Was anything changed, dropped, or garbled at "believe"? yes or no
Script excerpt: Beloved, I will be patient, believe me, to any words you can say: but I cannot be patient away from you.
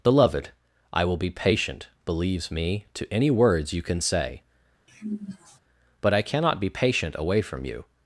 yes